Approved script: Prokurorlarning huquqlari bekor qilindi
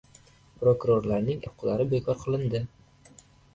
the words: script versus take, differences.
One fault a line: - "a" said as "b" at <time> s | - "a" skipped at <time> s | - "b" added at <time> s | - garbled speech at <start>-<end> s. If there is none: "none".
none